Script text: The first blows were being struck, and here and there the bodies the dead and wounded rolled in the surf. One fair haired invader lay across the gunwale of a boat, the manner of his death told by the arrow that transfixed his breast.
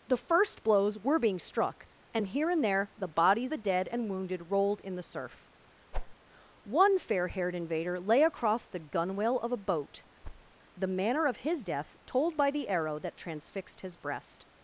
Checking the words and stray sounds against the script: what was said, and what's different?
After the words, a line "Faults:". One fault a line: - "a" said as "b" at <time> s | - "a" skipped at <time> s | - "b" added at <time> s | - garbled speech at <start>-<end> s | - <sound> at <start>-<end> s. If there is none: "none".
The first blows were being struck, and here and there the bodies the dead and wounded rolled in the surf. One fair haired invader lay across the gunwale of a boat, the manner of his death told by the arrow that transfixed his breast.
Faults:
- whoosh at 5.9-6.2 s
- thud at 10.2-10.6 s